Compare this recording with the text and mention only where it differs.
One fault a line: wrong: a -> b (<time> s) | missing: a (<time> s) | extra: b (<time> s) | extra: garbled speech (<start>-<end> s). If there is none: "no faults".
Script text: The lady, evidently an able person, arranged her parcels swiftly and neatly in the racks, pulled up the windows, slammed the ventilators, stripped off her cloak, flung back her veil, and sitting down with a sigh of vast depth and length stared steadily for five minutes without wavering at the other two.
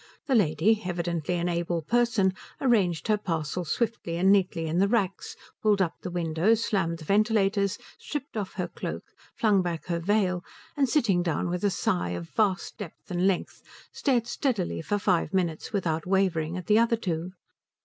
no faults